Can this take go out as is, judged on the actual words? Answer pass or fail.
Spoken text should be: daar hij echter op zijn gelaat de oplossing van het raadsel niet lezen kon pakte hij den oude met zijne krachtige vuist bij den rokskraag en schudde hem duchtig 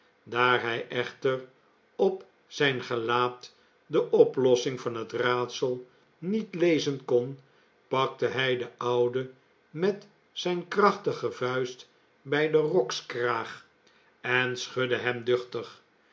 pass